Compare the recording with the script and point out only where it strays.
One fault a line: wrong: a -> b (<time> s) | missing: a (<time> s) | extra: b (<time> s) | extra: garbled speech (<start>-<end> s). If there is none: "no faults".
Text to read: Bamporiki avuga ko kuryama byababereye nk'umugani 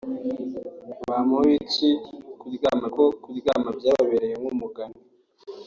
wrong: avuga -> kuryama (2.4 s)